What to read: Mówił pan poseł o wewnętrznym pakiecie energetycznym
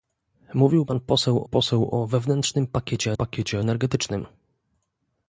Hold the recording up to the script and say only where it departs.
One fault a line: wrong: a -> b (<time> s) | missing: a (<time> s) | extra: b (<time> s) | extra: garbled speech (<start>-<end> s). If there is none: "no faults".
extra: poseł (1.4 s)
extra: pakiecie (3.1 s)